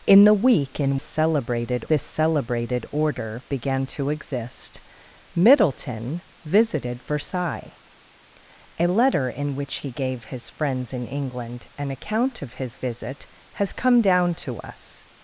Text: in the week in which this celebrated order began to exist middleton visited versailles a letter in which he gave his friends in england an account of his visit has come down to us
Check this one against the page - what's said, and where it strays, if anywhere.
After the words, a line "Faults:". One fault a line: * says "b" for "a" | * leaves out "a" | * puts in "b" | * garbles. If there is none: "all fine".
in the week in celebrated this celebrated order began to exist middleton visited versailles a letter in which he gave his friends in england an account of his visit has come down to us
Faults:
* says "celebrated" for "which"